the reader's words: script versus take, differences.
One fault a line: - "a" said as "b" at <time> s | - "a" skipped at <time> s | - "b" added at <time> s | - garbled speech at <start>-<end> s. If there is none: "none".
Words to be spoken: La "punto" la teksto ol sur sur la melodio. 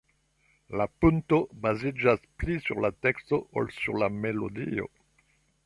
- "baziĝas pli sur" added at 1.6 s
- "sur" skipped at 4.0 s